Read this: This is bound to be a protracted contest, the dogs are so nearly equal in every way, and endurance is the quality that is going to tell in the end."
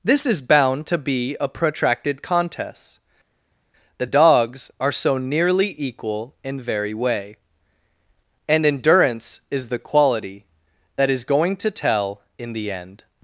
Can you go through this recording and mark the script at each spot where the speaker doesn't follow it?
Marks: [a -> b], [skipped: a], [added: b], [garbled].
This is bound to be a protracted contest, the dogs are so nearly equal in [every -> very] way, and endurance is the quality that is going to tell in the end."